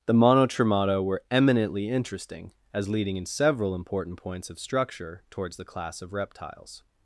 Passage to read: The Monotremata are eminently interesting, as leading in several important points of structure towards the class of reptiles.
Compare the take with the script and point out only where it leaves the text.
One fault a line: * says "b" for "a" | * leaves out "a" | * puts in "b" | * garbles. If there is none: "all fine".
* says "were" for "are"